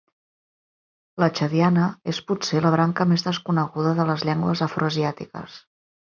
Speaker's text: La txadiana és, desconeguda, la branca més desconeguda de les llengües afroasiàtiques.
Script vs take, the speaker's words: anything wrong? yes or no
yes